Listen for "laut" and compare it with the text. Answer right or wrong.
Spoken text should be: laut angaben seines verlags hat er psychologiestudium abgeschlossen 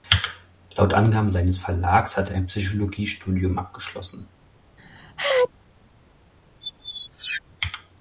right